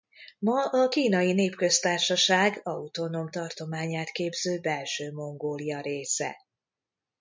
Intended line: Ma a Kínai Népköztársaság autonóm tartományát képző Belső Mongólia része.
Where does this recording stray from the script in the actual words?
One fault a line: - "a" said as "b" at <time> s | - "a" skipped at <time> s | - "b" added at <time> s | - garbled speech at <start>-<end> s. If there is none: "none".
none